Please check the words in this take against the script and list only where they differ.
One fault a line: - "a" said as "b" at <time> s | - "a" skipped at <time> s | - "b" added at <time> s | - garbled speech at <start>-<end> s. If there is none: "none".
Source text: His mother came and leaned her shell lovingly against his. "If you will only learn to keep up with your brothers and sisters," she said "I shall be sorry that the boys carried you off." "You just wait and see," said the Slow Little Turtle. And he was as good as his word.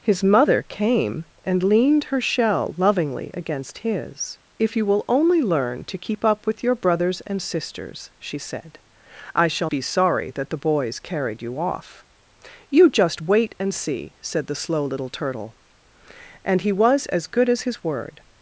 none